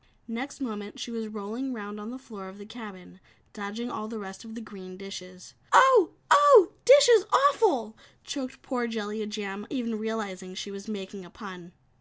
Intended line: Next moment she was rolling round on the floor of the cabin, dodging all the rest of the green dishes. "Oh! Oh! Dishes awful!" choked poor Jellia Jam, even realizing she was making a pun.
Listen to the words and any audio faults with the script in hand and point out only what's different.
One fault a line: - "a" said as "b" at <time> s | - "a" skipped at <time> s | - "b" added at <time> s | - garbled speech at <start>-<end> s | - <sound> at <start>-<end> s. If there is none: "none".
none